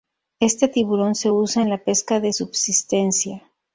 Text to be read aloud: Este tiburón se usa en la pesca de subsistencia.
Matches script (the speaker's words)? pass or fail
pass